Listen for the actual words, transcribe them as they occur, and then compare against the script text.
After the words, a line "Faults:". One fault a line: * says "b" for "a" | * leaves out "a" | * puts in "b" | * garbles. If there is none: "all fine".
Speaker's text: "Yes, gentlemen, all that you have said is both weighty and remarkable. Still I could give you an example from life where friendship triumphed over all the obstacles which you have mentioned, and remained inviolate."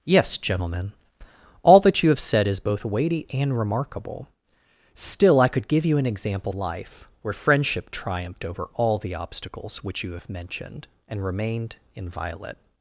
"Yes, gentlemen, all that you have said is both weighty and remarkable. Still I could give you an example life where friendship triumphed over all the obstacles which you have mentioned, and remained inviolate."
Faults:
* leaves out "from"